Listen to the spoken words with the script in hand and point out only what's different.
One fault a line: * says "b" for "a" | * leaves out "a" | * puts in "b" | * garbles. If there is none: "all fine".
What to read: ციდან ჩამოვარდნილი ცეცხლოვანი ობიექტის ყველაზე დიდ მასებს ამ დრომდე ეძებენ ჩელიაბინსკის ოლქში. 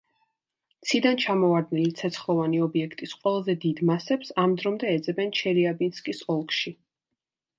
all fine